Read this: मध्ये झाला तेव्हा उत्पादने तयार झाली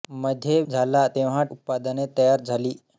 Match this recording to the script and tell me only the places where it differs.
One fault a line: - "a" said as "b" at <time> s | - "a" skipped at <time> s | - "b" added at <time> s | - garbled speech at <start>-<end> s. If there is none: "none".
none